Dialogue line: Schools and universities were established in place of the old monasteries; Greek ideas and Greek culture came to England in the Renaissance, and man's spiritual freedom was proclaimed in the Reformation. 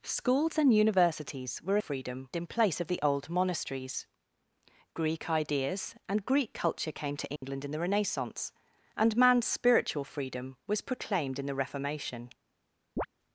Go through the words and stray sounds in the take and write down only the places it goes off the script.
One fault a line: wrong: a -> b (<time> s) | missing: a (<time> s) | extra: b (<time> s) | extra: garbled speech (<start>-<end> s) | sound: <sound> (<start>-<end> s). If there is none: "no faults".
wrong: established -> freedom (1.8 s)
sound: dropout (7.4-7.4 s)
sound: chirp (13.0-13.1 s)